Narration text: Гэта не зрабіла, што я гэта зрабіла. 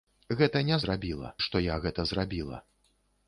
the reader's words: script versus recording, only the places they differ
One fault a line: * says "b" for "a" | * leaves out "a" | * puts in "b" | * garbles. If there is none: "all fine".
all fine